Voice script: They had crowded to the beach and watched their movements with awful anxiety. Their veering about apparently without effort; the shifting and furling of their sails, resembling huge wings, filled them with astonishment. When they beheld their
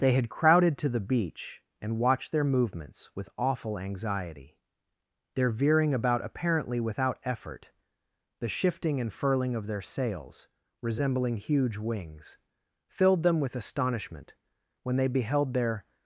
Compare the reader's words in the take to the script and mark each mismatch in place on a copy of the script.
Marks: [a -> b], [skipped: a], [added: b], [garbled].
They had crowded to the beach and watched their movements with awful anxiety. Their veering about apparently without effort; the shifting and furling of their sails, resembling huge wings, filled them with astonishment. When they beheld their